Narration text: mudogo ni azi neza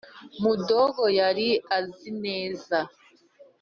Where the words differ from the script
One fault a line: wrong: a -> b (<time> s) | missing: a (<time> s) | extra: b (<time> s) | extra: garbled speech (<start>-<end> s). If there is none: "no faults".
wrong: ni -> yari (1.2 s)